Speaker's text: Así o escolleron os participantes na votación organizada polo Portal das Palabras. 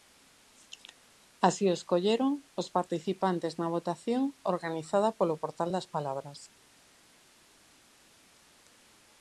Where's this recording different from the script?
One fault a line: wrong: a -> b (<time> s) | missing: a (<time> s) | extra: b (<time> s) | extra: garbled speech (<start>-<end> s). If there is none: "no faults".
no faults